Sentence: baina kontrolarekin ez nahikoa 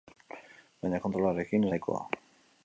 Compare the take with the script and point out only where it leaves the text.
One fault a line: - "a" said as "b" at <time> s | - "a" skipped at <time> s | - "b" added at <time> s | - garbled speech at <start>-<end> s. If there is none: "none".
none